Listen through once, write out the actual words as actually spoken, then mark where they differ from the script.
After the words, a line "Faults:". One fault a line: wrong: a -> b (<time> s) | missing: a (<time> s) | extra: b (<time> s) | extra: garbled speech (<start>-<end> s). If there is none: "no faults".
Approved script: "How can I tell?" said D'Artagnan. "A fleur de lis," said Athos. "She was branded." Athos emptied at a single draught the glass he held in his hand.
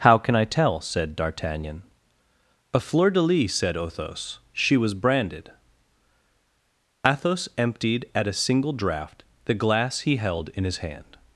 "How can I tell?" said D'Artagnan. "A fleur de lis," said Athos. "She was branded." Athos emptied at a single draught the glass he held in his hand.
Faults:
no faults